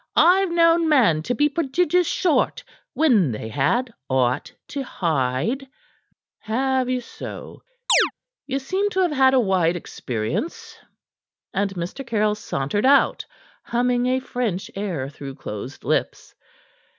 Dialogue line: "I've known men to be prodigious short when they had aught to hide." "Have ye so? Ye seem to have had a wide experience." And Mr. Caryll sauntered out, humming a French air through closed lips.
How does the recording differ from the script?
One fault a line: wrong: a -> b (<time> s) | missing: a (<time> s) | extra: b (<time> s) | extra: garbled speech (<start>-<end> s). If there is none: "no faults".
no faults